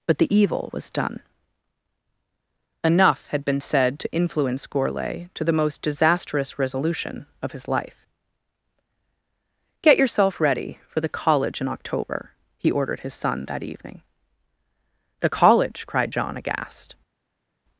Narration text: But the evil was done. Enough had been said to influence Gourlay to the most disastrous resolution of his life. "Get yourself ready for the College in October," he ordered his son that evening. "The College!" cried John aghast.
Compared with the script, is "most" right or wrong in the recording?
right